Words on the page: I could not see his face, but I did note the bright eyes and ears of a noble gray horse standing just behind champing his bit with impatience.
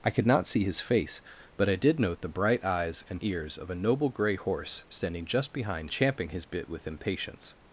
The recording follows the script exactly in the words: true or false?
true